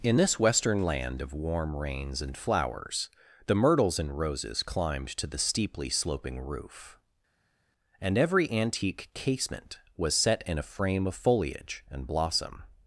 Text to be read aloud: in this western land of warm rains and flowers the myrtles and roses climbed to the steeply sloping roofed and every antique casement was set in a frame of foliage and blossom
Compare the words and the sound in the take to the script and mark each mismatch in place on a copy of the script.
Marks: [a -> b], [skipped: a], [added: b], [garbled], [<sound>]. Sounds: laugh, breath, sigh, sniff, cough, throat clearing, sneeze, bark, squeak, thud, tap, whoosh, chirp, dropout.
in this western land of warm rains and flowers the myrtles and roses climbed to the steeply sloping [roofed -> roof] and every antique casement was set in a frame of foliage and blossom